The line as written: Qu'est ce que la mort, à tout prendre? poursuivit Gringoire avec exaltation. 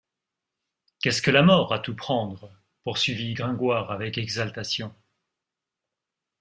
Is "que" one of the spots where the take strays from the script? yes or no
no